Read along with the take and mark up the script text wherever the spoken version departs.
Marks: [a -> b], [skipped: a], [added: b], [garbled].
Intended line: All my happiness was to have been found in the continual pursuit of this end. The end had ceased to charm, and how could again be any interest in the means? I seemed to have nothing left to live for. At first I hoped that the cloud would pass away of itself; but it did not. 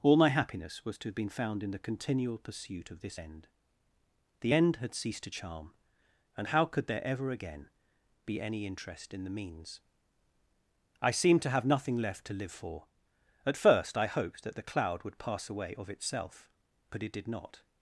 All my happiness was to have been found in the continual pursuit of this end. The end had ceased to charm, and how could [added: there ever] again be any interest in the means? I seemed to have nothing left to live for. At first I hoped that the cloud would pass away of itself; but it did not.